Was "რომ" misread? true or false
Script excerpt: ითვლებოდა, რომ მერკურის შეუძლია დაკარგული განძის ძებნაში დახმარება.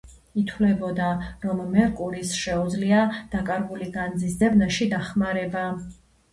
false